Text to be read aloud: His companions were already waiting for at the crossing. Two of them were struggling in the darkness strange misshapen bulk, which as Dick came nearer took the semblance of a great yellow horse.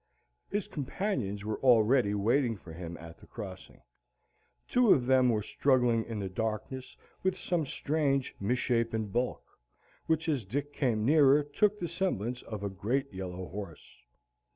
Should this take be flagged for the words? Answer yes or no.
yes